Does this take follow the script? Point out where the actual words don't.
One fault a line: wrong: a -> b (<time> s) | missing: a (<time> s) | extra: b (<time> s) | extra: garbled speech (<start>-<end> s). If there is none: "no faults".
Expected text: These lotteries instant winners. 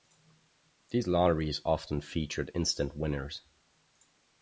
extra: often featured (1.6 s)